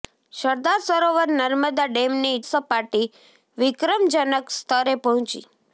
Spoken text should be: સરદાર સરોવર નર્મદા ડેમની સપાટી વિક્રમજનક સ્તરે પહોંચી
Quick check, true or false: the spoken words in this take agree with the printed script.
true